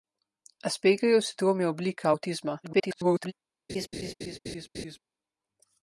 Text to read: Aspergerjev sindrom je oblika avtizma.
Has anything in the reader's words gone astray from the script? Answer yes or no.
yes